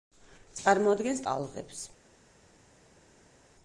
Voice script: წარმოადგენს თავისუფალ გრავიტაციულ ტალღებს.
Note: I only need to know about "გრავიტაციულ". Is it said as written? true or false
false